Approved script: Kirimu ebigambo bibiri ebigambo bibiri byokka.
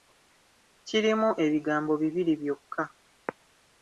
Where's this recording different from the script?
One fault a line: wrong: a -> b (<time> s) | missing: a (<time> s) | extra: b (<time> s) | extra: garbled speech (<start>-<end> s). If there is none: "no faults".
missing: ebigambo bibiri (2.3 s)